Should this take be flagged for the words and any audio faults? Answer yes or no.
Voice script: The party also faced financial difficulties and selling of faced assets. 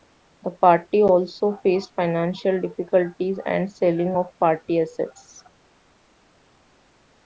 yes